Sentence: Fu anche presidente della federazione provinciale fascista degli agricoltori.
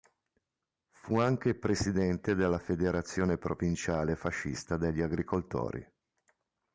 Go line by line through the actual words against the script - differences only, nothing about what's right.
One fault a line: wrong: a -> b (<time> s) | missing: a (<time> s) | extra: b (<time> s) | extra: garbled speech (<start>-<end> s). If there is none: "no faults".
no faults